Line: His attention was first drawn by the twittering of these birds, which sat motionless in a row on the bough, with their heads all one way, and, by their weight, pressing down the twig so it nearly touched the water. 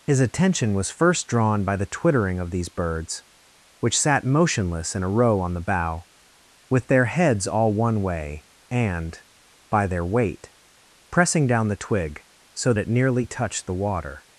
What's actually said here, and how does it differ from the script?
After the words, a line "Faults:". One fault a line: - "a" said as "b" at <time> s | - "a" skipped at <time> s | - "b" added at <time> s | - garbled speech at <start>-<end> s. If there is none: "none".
His attention was first drawn by the twittering of these birds, which sat motionless in a row on the bough, with their heads all one way, and, by their weight, pressing down the twig so it nearly touched the water.
Faults:
none